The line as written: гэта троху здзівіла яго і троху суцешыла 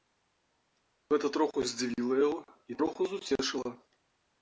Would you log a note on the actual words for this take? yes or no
no